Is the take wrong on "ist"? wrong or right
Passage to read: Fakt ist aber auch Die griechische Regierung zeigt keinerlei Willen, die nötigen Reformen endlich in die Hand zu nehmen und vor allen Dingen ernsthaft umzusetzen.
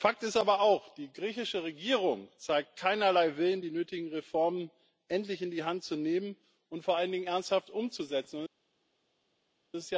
right